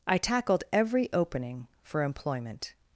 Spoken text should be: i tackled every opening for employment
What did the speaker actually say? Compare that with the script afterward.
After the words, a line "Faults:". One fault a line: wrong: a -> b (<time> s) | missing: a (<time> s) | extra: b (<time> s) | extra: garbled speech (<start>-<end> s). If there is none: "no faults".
i tackled every opening for employment
Faults:
no faults